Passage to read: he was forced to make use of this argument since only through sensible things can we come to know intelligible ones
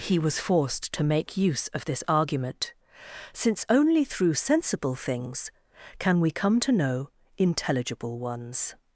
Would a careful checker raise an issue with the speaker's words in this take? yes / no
no